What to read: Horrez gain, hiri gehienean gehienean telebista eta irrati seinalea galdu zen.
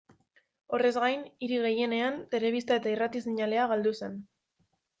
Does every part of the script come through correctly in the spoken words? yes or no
no